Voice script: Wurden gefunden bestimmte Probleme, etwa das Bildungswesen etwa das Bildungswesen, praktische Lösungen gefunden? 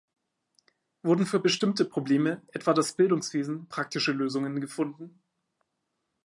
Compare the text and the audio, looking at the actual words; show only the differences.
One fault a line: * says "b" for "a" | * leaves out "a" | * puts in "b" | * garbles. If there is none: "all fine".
* says "für" for "gefunden"
* leaves out "etwa das Bildungswesen"